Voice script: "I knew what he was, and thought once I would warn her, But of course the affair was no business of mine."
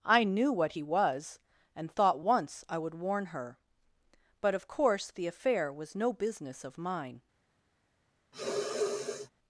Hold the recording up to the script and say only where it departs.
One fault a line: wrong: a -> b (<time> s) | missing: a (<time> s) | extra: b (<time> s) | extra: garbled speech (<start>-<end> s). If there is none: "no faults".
no faults